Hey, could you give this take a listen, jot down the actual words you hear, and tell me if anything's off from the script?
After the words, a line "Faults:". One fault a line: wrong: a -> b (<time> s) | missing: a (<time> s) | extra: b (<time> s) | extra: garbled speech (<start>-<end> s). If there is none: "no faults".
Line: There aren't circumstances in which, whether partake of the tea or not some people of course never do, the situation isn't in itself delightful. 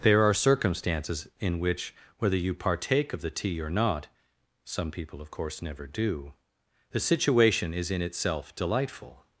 There are circumstances in which, whether you partake of the tea or not some people of course never do, the situation is in itself delightful.
Faults:
wrong: aren't -> are (0.2 s)
extra: you (2.4 s)
wrong: isn't -> is (7.7 s)